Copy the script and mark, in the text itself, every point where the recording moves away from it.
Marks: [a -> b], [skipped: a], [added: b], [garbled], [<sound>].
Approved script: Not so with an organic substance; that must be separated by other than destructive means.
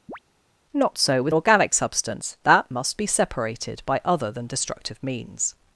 [chirp] Not so with [skipped: an] organic substance; that must be separated by other than destructive means.